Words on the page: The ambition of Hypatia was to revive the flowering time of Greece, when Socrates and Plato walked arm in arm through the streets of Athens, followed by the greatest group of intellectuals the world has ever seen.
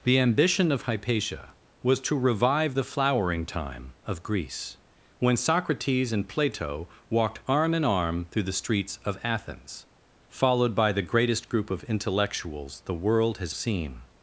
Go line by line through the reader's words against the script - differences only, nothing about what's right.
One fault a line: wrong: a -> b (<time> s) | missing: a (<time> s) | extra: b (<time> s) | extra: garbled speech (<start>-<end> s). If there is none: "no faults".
missing: ever (13.5 s)